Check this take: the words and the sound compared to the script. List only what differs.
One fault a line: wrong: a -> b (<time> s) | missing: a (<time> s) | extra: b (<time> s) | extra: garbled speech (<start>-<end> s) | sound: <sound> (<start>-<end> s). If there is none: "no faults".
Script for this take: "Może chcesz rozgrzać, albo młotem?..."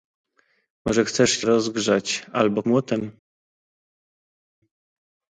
no faults